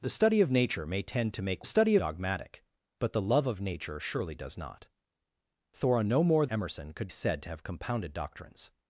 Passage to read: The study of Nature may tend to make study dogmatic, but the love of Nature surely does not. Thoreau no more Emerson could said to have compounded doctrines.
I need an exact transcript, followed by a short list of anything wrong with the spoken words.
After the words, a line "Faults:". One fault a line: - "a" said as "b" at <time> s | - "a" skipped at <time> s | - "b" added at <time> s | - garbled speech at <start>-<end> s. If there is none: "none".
The study of Nature may tend to make study dogmatic, but the love of Nature surely does not. Thoreau no more Emerson could said to have compounded doctrines.
Faults:
none